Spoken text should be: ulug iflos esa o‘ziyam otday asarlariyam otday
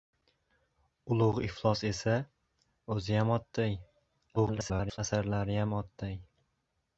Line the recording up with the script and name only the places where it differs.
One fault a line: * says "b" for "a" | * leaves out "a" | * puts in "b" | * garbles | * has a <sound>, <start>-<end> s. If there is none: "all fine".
* garbles